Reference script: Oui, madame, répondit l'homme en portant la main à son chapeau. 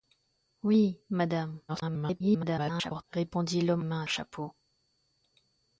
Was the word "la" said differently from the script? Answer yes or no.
yes